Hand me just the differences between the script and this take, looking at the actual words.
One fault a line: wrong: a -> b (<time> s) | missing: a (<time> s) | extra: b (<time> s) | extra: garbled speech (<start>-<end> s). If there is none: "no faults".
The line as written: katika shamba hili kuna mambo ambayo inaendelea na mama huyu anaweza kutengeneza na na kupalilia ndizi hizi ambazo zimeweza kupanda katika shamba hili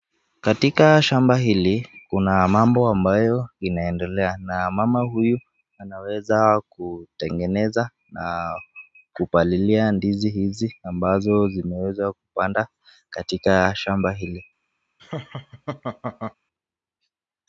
missing: na (8.5 s)